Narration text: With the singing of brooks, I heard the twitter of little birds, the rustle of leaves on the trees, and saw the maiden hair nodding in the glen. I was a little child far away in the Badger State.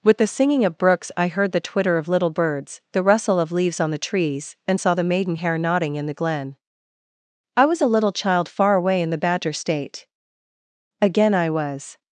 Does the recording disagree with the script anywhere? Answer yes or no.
yes